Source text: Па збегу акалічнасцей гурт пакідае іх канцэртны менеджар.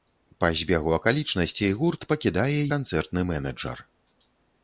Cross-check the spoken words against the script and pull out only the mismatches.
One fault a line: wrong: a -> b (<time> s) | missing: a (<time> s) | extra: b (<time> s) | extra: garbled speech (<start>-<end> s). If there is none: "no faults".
missing: іх (2.6 s)